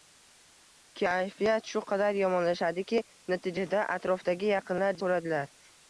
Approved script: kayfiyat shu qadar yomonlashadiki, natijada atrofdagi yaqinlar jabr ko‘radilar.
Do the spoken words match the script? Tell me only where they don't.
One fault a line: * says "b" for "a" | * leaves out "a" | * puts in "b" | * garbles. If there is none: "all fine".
* leaves out "jabr"